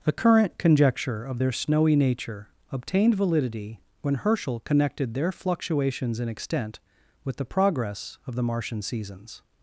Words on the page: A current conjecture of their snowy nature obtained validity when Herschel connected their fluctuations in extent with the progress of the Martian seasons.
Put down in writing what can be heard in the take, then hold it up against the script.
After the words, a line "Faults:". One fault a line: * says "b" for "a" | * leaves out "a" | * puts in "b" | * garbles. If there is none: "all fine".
The current conjecture of their snowy nature obtained validity when Herschel connected their fluctuations in extent with the progress of the Martian seasons.
Faults:
* says "The" for "A"